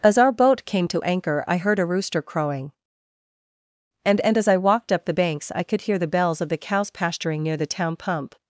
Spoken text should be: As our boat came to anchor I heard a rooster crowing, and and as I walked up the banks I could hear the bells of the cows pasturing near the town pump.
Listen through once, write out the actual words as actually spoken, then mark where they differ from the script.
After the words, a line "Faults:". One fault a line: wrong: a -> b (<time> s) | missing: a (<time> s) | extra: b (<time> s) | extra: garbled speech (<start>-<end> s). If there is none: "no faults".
As our boat came to anchor I heard a rooster crowing, and and as I walked up the banks I could hear the bells of the cows pasturing near the town pump.
Faults:
no faults